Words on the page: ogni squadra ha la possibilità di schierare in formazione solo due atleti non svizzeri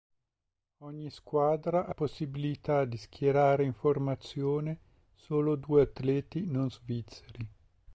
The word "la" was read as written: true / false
false